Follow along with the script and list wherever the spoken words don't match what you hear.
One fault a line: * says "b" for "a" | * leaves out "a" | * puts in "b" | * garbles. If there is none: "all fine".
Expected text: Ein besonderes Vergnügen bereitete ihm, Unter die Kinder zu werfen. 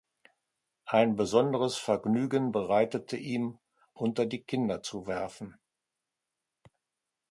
all fine